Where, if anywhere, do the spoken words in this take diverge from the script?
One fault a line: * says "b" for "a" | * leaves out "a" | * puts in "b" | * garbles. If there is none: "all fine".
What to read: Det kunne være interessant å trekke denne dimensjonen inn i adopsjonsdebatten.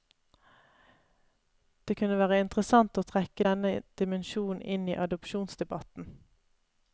all fine